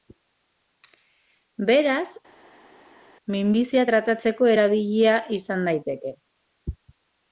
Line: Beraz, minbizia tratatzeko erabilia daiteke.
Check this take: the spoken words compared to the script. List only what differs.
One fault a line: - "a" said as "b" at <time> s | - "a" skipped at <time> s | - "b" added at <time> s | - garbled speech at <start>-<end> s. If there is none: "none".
- "izan" added at 5.4 s